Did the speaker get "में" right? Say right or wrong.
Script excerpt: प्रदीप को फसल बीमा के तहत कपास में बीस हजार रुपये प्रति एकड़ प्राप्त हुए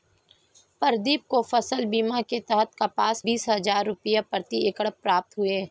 wrong